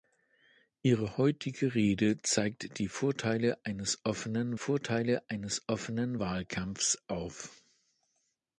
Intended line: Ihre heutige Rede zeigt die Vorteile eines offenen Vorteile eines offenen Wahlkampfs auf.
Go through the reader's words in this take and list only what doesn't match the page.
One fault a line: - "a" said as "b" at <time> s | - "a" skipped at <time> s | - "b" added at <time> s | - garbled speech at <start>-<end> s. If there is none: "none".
none